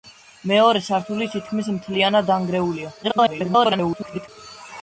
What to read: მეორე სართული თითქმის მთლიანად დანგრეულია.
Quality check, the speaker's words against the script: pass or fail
fail